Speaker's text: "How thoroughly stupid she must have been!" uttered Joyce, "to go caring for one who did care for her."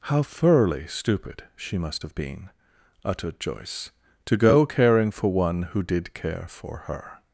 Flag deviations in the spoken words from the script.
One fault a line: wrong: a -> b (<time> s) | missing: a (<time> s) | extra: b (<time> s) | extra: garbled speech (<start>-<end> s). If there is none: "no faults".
no faults